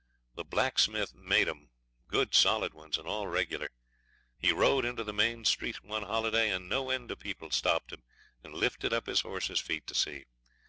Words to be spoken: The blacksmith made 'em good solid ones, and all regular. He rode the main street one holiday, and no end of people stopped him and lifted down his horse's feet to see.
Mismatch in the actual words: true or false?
true